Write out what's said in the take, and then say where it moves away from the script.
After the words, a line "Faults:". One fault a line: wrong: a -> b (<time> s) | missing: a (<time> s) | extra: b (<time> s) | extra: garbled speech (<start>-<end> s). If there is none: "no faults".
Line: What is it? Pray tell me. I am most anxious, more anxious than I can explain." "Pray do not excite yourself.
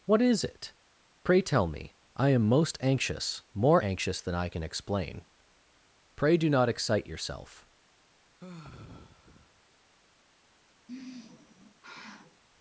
What is it? Pray tell me. I am most anxious, more anxious than I can explain." "Pray do not excite yourself.
Faults:
no faults